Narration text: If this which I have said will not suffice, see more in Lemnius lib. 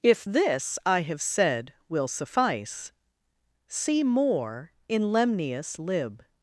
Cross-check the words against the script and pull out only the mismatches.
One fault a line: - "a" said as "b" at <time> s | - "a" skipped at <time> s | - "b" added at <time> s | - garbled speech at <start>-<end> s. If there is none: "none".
- "which" skipped at 0.8 s
- "not" skipped at 2.1 s